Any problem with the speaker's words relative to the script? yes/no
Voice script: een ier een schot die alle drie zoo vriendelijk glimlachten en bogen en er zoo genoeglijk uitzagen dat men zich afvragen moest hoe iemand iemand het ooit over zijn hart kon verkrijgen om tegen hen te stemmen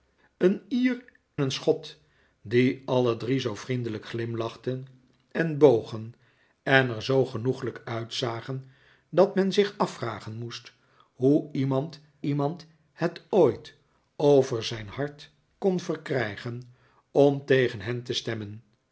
no